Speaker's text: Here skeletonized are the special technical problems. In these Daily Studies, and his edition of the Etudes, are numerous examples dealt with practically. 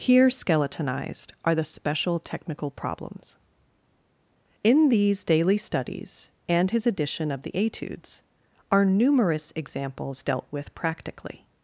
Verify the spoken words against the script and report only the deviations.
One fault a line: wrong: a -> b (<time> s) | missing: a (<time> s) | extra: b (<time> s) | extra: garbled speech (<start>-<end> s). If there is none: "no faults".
no faults